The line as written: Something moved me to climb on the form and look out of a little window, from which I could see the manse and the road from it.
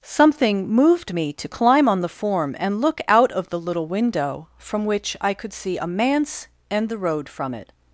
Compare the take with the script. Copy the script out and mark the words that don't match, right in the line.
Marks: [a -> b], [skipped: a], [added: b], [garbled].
Something moved me to climb on the form and look out of [a -> the] little window, from which I could see [the -> a] manse and the road from it.